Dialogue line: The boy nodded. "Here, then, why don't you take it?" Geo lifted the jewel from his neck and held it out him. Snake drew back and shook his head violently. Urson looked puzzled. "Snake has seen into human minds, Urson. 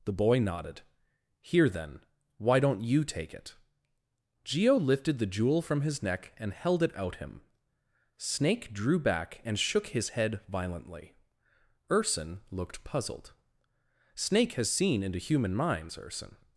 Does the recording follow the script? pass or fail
pass